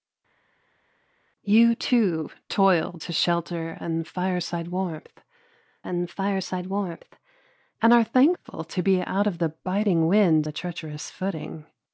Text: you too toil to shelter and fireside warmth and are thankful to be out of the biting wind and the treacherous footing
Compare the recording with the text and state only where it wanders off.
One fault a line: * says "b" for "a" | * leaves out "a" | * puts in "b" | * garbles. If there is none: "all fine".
* puts in "fireside warmth and"
* leaves out "and"